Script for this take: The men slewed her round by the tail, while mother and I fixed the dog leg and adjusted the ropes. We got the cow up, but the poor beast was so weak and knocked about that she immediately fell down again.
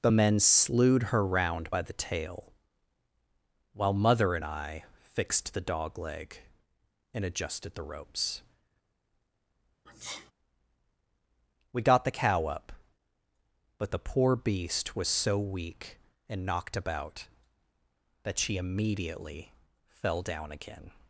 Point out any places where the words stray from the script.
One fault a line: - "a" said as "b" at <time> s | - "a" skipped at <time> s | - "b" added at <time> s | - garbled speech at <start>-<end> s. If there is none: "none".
none